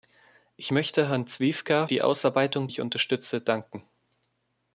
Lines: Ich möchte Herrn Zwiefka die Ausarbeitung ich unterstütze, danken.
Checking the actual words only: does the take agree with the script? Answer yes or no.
yes